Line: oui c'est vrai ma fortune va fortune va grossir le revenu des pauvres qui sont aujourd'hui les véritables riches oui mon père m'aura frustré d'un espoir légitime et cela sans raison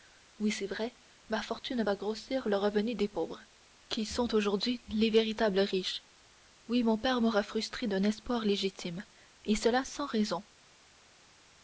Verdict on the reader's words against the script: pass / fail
fail